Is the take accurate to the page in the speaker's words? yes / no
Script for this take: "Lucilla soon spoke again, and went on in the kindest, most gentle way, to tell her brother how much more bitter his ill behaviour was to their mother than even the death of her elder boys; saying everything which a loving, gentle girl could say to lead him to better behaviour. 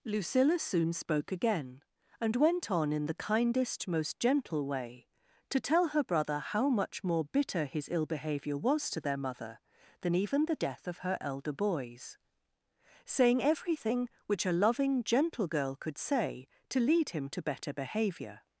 yes